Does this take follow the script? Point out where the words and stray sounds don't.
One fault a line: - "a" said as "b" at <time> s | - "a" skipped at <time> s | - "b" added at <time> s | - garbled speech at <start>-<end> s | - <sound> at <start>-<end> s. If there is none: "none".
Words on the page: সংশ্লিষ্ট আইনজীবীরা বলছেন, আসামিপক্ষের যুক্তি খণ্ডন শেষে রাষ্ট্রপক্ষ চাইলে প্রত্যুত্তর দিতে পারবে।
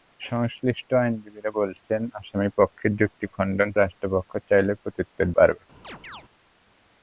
- "শেষে" skipped at 3.7 s
- "দিতে" skipped at 5.3 s
- chirp at 5.8-6.2 s